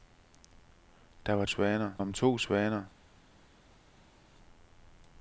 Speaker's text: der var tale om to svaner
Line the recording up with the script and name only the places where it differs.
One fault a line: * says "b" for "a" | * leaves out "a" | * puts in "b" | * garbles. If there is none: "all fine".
* says "svaner" for "tale"